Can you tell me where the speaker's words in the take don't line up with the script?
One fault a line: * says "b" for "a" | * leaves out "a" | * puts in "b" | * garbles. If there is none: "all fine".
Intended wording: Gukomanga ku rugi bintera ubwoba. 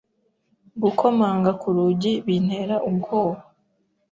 all fine